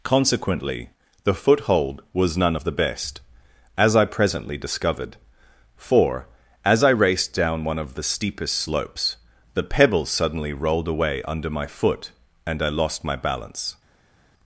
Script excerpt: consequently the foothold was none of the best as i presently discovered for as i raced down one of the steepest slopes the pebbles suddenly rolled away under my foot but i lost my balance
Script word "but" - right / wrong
wrong